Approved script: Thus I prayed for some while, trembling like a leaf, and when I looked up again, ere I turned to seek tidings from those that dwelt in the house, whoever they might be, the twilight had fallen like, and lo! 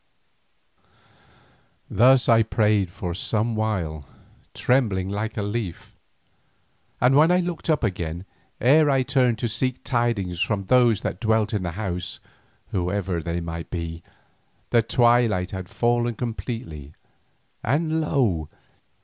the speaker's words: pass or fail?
fail